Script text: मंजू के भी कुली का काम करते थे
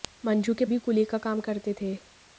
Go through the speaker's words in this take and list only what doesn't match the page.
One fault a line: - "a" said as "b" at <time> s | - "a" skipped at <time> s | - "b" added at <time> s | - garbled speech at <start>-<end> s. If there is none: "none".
none